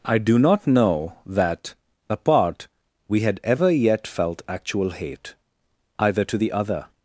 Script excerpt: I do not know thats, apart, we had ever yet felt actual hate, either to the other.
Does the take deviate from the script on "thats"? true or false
true